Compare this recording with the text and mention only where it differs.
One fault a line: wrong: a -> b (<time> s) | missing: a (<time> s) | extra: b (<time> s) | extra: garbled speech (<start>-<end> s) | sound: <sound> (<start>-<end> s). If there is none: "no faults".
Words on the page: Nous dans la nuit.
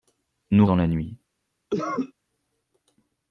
sound: cough (1.7-2.1 s)